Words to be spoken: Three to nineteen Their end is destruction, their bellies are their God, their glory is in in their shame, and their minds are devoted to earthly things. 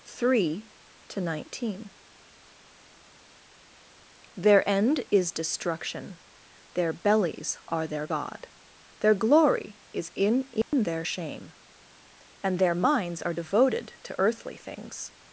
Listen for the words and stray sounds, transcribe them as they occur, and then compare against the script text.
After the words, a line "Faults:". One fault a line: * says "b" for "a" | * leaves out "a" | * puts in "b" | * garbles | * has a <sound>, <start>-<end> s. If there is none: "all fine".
Three to nineteen Their end is destruction, their bellies are their God, their glory is in in their shame, and their minds are devoted to earthly things.
Faults:
* has a dropout, 10.6-10.7 s